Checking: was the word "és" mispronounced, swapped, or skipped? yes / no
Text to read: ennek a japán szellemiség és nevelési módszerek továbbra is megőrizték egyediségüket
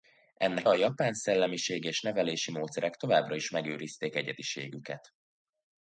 no